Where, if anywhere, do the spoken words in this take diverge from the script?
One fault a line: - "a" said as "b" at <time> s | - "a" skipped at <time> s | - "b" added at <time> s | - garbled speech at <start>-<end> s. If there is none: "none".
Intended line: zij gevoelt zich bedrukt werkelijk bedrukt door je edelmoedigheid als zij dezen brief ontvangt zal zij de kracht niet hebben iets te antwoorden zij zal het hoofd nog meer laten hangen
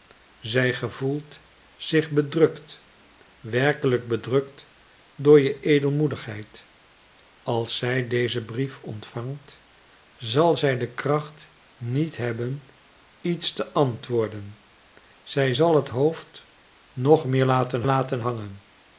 - "laten" added at 17.9 s